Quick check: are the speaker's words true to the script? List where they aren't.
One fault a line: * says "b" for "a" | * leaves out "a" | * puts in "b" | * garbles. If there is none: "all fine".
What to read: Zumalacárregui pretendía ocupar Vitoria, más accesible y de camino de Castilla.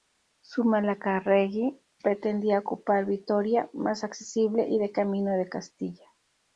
all fine